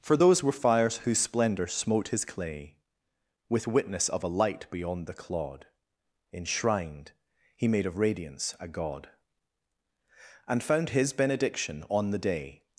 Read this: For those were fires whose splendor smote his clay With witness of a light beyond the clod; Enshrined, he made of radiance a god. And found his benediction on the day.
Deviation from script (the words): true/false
false